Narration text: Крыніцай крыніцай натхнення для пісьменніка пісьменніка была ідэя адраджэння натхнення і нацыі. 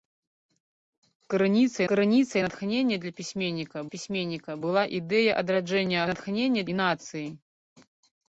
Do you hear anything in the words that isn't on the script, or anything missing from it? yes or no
no